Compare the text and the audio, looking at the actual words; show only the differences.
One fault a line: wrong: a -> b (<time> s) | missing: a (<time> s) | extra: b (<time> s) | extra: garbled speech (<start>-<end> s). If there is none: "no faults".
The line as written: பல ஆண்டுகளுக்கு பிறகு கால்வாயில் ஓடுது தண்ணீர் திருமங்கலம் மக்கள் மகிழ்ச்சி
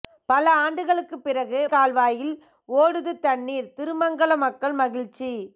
no faults